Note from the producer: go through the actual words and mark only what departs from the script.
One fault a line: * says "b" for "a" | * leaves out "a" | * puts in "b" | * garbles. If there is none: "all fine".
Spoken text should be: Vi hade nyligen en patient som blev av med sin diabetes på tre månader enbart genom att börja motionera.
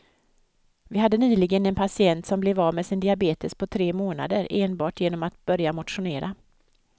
all fine